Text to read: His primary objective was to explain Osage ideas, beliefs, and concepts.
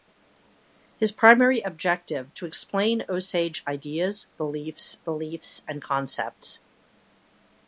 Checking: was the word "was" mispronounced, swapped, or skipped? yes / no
yes